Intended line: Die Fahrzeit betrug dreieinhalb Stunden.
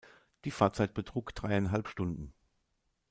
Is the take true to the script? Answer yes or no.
yes